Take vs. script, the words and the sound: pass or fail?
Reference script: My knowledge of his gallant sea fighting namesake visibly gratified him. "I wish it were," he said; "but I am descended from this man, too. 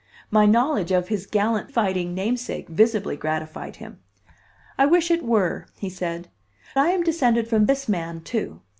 fail